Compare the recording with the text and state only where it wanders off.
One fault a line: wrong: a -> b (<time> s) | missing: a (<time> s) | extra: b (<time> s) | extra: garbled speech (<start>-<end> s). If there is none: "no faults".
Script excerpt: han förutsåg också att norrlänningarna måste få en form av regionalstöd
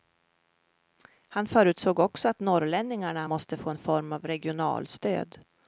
no faults